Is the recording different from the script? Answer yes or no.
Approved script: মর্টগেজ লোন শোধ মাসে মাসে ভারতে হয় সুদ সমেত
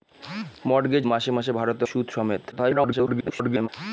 yes